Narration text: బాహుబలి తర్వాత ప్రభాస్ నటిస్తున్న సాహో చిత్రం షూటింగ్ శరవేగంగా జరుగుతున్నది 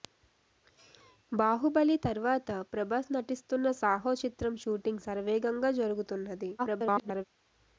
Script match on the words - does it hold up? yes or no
no